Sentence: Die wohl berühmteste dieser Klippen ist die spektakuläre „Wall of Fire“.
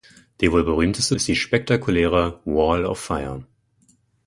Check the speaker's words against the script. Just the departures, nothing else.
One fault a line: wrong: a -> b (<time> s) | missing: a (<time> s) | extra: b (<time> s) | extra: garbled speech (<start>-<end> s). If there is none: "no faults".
missing: dieser Klippen (1.1 s)